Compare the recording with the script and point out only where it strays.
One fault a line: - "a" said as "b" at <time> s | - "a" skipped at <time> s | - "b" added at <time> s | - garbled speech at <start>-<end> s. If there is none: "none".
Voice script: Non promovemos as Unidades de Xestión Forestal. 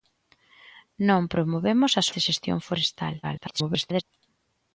- "Unidades" skipped at 2.1 s
- garbled speech at 3.2-4.0 s